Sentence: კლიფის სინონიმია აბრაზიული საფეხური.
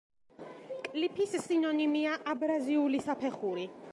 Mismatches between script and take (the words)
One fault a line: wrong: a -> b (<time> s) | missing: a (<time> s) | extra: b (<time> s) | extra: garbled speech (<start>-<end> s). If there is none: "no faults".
no faults